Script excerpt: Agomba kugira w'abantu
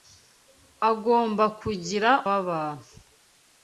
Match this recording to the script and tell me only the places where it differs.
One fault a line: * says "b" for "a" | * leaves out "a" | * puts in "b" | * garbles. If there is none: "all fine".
all fine